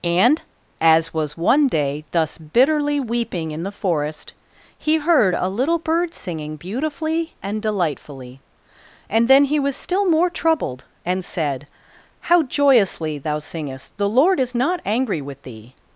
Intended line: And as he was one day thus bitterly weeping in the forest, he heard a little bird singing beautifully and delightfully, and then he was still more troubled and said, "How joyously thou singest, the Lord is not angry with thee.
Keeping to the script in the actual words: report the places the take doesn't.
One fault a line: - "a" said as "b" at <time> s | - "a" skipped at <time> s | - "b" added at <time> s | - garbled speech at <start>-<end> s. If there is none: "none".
- "he" skipped at 1.1 s